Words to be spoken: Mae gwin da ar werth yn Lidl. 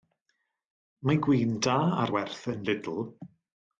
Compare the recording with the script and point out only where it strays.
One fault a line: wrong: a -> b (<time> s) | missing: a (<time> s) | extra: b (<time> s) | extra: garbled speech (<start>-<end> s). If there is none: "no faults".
no faults